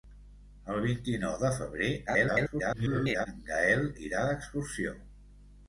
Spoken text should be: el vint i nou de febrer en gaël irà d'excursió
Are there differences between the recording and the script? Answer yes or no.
yes